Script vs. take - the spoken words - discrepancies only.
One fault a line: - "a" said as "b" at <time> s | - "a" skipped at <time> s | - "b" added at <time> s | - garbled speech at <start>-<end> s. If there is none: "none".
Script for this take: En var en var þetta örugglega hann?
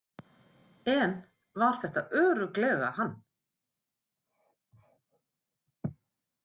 - "en var" skipped at 1.8 s